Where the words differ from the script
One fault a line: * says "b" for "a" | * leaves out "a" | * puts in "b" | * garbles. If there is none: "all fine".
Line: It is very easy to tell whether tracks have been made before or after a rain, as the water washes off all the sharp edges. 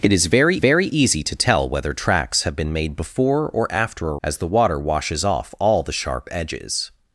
* puts in "very"
* leaves out "rain"